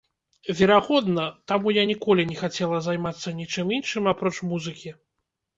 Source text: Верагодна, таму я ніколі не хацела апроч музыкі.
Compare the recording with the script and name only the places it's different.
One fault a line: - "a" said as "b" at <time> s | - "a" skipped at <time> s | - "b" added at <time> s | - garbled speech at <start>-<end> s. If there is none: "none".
- "займацца нічым іншым" added at 2.9 s